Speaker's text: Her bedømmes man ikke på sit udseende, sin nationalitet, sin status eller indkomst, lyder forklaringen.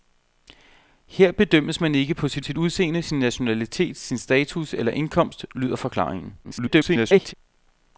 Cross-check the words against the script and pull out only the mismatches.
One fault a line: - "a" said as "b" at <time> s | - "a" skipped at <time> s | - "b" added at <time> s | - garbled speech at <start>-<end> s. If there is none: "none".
- "sit" added at 2.4 s
- garbled speech at 6.4-7.3 s